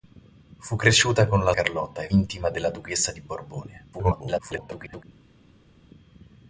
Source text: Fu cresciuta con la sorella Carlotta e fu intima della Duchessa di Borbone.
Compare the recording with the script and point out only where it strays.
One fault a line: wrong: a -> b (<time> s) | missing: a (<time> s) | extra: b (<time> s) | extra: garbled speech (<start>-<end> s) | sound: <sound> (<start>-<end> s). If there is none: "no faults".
missing: sorella (1.5 s)
missing: fu (2.1 s)
extra: garbled speech (3.9-5.0 s)